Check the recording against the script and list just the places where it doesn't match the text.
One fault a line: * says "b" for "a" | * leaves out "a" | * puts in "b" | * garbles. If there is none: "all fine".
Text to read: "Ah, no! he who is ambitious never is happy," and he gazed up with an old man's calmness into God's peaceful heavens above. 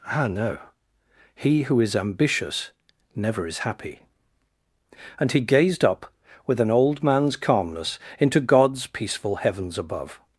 all fine